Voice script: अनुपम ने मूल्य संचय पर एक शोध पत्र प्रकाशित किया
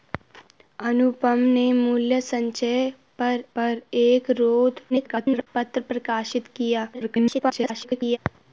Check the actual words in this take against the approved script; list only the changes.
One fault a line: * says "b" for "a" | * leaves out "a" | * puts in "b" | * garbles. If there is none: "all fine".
* puts in "पर"
* garbles
* garbles